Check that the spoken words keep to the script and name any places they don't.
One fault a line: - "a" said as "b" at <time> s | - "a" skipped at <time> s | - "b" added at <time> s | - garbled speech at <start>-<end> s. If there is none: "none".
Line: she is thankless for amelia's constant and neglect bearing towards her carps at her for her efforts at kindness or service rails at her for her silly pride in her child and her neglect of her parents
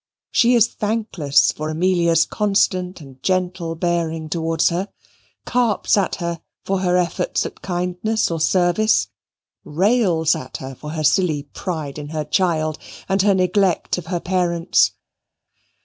- "neglect" said as "gentle" at 3.2 s